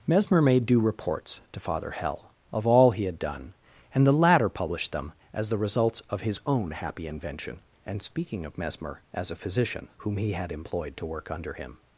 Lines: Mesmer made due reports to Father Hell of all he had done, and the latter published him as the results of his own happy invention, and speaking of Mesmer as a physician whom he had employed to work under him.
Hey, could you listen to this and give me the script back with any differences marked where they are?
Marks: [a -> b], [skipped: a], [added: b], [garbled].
Mesmer made due reports to Father Hell of all he had done, and the latter published [him -> them] as the results of his own happy invention, and speaking of Mesmer as a physician whom he had employed to work under him.